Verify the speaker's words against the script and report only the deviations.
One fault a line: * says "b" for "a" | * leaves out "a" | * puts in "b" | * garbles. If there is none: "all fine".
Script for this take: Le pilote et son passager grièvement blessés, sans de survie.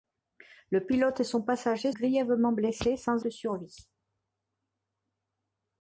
all fine